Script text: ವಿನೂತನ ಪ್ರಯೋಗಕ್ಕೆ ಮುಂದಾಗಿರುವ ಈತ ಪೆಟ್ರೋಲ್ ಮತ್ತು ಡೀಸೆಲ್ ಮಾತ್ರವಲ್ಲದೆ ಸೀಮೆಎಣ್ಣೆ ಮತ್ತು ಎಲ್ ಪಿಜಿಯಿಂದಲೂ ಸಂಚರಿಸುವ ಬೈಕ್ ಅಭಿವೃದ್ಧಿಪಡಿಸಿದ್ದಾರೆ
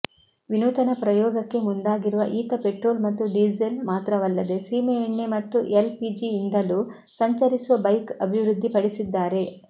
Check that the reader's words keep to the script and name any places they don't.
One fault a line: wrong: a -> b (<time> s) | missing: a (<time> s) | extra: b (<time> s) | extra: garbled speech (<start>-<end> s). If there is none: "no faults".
no faults